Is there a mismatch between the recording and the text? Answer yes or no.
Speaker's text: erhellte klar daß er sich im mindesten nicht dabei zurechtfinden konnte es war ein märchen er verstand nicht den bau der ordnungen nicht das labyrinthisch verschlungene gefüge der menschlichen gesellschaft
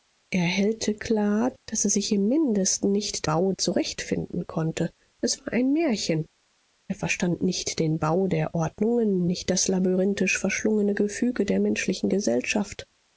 yes